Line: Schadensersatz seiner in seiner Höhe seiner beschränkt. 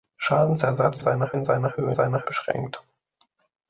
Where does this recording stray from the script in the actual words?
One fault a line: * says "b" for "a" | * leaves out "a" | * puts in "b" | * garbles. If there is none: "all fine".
all fine